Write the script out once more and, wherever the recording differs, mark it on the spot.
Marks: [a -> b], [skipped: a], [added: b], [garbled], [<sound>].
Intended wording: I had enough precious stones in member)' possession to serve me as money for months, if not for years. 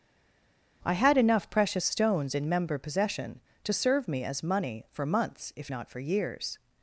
I had enough precious stones in member)' possession to serve me as money for months, if not for years.